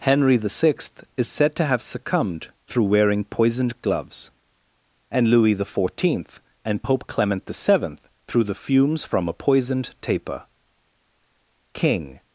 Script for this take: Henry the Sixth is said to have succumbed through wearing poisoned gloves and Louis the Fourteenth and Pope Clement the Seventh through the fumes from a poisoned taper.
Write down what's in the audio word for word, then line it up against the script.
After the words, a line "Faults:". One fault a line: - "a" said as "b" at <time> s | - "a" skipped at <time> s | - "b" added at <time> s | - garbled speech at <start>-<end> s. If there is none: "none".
Henry the Sixth is said to have succumbed through wearing poisoned gloves and Louis the Fourteenth and Pope Clement the Seventh through the fumes from a poisoned taper. King
Faults:
- "King" added at 11.7 s